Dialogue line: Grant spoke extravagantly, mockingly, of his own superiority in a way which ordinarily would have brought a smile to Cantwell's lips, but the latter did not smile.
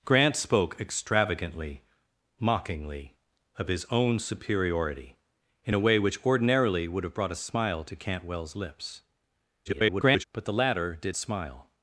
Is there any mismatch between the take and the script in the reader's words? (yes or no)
yes